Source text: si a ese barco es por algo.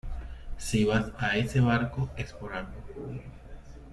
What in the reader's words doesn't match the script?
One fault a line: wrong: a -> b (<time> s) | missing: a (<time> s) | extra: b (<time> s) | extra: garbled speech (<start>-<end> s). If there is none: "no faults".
extra: vas (0.8 s)